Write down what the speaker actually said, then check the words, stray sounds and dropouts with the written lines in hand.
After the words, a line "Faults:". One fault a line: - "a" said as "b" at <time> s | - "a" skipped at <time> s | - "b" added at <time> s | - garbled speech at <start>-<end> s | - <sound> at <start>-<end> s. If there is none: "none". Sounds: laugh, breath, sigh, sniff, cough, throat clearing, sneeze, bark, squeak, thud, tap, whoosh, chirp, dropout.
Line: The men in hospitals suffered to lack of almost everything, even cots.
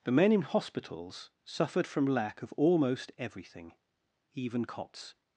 The men in hospitals suffered from lack of almost everything, even cots.
Faults:
- "to" said as "from" at 1.9 s